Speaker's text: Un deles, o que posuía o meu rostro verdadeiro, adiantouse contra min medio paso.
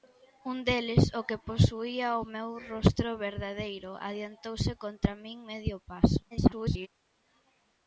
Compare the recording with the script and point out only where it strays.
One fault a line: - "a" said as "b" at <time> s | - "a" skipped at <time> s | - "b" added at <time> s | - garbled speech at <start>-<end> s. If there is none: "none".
- garbled speech at 6.3-6.9 s